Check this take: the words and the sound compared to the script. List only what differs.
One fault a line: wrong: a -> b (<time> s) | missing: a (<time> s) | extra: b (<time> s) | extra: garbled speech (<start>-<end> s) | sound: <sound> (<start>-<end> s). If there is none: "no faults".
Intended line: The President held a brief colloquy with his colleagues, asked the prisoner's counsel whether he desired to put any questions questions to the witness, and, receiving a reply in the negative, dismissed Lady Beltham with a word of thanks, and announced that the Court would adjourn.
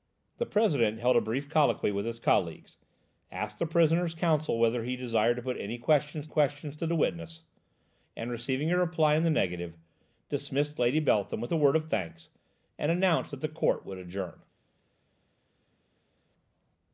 no faults